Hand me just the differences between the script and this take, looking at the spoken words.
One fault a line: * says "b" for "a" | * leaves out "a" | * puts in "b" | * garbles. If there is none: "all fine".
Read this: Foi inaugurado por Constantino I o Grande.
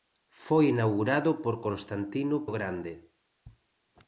* leaves out "I"